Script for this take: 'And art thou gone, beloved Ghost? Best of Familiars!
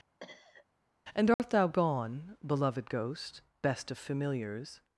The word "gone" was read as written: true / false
true